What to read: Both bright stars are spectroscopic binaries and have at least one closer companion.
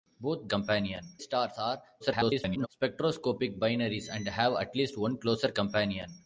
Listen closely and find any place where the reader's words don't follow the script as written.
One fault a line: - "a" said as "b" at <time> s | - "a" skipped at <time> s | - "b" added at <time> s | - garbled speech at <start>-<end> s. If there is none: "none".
- "bright" said as "companion" at 0.5 s
- garbled speech at 2.0-2.7 s